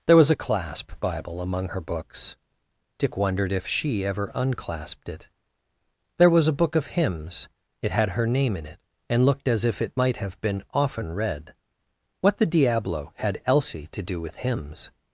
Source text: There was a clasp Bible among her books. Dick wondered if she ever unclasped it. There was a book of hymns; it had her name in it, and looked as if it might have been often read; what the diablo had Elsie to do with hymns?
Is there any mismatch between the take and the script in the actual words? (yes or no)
no